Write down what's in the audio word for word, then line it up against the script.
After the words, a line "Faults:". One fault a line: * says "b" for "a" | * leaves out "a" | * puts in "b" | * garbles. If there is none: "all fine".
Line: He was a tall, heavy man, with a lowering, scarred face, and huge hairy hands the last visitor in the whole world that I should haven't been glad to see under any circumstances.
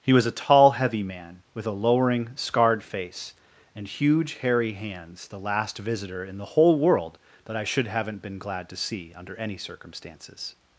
He was a tall, heavy man, with a lowering, scarred face, and huge hairy hands the last visitor in the whole world that I should haven't been glad to see under any circumstances.
Faults:
all fine